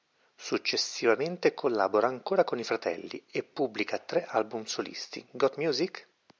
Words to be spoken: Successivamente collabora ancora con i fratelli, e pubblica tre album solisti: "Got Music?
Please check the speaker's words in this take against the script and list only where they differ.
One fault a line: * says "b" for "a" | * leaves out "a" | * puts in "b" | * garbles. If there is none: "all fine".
all fine